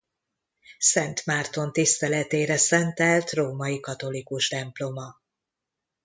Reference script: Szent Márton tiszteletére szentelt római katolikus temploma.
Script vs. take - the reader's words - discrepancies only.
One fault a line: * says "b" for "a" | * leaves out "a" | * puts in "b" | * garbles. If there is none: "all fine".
all fine